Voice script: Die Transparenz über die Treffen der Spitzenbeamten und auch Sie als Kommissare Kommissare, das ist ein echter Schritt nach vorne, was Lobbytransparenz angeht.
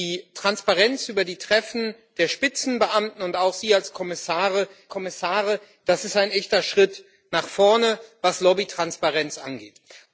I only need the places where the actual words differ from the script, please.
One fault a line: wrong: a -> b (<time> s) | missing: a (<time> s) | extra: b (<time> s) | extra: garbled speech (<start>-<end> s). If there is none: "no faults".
no faults